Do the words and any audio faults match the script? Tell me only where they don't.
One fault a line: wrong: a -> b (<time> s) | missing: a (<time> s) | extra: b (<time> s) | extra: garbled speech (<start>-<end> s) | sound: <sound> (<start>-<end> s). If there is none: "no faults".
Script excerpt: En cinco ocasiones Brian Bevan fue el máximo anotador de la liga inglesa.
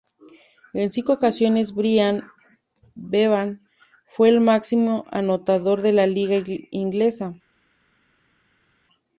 no faults